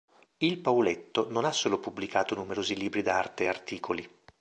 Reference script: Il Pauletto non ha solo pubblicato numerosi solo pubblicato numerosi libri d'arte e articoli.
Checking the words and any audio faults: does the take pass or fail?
fail